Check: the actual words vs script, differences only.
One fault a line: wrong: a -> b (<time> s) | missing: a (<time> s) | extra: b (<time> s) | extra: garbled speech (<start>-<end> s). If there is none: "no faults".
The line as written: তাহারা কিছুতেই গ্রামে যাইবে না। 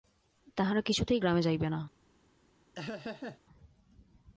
no faults